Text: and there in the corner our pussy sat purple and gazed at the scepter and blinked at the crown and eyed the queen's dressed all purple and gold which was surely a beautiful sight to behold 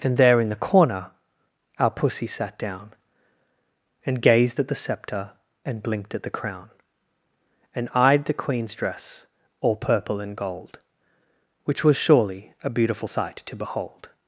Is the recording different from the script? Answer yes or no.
yes